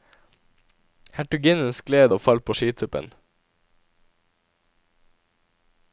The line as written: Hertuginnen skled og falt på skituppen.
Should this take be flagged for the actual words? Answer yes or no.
no